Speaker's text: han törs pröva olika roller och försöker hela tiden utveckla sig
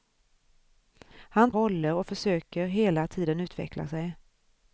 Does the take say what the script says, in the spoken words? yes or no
no